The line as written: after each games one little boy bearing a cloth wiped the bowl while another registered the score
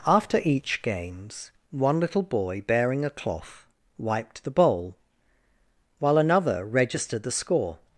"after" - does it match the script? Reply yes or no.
yes